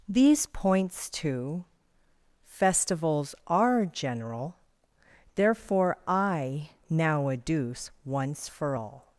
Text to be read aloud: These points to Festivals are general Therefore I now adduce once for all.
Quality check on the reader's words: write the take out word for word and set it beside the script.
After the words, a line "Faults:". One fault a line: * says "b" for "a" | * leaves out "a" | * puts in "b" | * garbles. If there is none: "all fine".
These points to Festivals are general Therefore I now adduce once for all.
Faults:
all fine